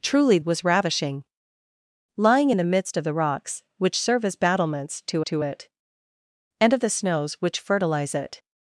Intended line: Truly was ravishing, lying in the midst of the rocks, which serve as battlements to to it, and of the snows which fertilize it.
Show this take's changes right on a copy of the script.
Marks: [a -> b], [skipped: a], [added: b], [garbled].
Truly was ravishing, lying in the midst of the rocks, which serve as battlements to to it, and of the snows which fertilize it.